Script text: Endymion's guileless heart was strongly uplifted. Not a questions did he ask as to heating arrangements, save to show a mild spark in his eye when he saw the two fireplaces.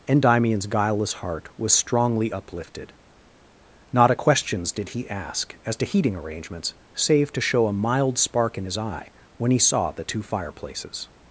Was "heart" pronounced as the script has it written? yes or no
yes